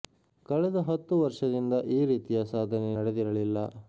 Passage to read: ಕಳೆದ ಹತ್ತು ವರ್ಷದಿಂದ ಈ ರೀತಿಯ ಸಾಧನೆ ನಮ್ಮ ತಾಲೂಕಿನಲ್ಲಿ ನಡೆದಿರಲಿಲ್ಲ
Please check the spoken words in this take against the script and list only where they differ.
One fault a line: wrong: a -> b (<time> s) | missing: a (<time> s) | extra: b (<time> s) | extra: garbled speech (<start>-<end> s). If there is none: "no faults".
missing: ನಮ್ಮ ತಾಲೂಕಿನಲ್ಲಿ (2.9 s)